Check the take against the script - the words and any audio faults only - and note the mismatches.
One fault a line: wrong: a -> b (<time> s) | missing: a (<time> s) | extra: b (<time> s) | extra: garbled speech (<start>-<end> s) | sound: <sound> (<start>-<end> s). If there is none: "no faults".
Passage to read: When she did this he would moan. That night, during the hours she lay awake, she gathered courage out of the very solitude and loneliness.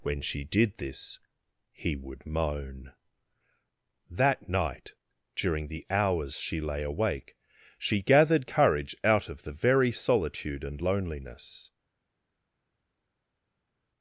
no faults